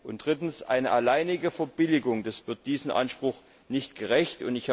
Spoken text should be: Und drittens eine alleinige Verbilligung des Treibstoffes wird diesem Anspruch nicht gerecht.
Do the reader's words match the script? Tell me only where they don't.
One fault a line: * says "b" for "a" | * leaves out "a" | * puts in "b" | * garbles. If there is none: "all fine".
* leaves out "Treibstoffes"